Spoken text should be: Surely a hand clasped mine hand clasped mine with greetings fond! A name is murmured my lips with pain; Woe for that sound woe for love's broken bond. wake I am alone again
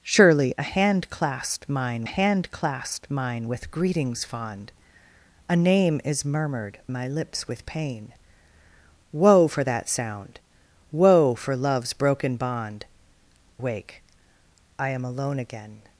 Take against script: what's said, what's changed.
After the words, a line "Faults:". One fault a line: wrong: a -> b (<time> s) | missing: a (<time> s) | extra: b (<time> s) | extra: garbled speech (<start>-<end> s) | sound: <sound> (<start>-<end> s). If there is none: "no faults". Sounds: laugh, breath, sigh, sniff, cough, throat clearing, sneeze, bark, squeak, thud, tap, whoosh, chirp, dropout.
Surely a hand clasped mine hand clasped mine with greetings fond! A name is murmured my lips with pain; Woe for that sound woe for love's broken bond. wake I am alone again
Faults:
no faults